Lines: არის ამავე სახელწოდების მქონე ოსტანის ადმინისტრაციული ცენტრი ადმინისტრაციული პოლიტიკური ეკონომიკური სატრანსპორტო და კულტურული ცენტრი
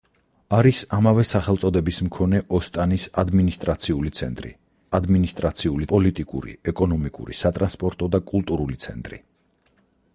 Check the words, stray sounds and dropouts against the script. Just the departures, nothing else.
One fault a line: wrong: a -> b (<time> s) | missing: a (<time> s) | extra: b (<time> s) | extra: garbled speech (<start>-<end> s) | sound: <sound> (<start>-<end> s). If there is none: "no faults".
no faults